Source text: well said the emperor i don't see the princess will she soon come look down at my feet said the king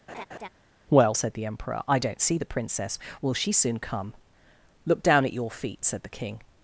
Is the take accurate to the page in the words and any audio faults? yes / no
no